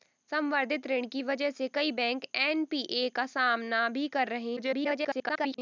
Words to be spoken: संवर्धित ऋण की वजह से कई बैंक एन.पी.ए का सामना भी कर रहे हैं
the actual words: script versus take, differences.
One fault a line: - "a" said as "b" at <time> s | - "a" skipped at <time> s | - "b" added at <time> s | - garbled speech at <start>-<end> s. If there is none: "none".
- garbled speech at 4.6-5.6 s